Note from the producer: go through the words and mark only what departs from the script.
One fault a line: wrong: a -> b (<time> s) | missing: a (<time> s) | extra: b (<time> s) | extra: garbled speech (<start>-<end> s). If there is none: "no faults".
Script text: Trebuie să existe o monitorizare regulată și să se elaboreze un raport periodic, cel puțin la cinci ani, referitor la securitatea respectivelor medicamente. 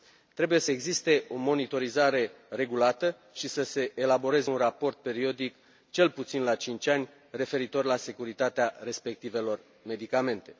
no faults